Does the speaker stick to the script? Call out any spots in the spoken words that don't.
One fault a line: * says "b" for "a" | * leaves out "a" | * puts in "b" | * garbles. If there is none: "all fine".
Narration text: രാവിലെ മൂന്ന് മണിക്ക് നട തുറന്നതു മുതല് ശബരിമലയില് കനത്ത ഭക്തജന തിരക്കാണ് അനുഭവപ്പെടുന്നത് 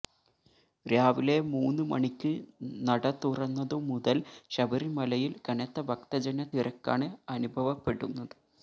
all fine